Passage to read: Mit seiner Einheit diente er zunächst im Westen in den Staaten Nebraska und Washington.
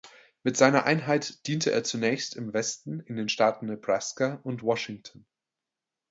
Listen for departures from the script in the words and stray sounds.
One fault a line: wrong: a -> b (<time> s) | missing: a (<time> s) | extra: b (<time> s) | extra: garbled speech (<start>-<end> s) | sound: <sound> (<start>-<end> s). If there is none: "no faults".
no faults